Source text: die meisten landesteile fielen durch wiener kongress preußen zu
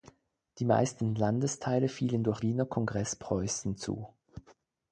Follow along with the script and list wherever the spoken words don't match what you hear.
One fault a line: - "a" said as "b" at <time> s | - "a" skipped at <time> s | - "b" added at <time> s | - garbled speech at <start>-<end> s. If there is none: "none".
none